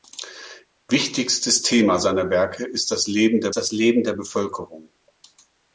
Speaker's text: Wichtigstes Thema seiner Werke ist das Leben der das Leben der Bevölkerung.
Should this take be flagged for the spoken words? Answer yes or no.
no